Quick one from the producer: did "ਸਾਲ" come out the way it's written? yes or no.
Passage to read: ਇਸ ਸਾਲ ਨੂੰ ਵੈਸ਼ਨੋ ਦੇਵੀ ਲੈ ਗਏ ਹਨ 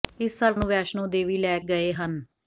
yes